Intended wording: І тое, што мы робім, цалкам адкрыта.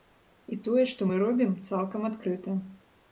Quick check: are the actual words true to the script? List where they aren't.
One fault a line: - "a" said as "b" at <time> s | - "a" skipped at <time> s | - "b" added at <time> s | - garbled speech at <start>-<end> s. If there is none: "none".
none